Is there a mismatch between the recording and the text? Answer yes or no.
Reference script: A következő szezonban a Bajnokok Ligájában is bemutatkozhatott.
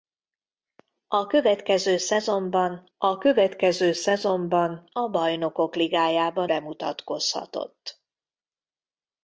yes